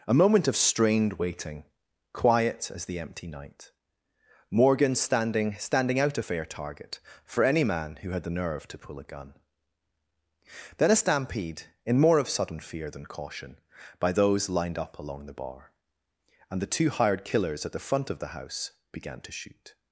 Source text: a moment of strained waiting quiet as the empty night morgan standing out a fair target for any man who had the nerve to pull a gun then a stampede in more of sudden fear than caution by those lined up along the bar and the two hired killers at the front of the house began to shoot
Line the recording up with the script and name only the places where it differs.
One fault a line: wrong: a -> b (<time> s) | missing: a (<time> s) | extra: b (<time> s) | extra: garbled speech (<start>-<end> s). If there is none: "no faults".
extra: standing (5.6 s)